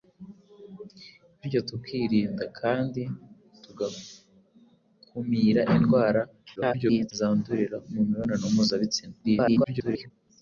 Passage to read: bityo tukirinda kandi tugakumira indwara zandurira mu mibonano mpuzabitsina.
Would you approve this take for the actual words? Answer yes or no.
no